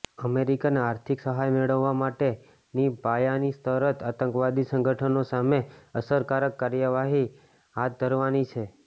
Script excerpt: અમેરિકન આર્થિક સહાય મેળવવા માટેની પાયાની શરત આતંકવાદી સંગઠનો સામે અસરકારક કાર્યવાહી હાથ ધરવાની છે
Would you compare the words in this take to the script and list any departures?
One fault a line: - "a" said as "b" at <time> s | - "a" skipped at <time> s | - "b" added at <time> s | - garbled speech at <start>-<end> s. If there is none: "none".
none